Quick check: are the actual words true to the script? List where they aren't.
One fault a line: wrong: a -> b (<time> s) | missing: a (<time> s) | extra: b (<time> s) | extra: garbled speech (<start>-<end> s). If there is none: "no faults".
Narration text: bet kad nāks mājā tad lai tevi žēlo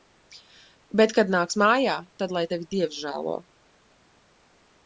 extra: dievs (2.8 s)